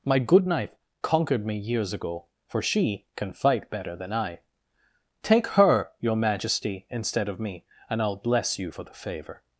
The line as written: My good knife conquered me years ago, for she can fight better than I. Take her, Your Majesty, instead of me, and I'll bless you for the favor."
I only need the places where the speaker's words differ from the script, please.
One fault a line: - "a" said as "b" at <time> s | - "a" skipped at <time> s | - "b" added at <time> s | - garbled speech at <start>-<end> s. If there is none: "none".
none